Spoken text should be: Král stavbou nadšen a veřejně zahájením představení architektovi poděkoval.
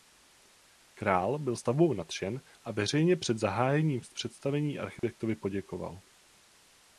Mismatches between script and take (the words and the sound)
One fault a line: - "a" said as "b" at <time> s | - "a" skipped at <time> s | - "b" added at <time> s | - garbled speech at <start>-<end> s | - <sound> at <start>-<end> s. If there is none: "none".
- "byl" added at 1.4 s
- "před" added at 3.2 s
- dropout at 5.0-5.0 s